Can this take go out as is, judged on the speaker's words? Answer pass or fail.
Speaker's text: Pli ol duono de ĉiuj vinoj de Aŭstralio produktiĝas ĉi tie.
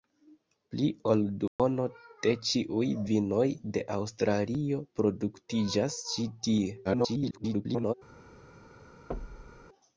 fail